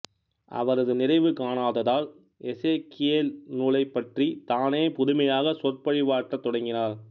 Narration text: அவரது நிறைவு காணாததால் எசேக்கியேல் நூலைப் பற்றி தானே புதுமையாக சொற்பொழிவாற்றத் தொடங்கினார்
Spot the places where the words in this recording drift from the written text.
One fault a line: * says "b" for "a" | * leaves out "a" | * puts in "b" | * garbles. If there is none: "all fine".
all fine